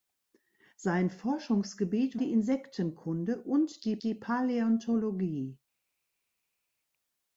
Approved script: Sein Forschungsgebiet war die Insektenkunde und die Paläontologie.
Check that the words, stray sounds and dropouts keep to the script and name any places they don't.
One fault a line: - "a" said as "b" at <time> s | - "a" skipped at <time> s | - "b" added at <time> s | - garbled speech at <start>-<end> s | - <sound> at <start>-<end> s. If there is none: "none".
- "war" skipped at 2.2 s
- "die" added at 4.0 s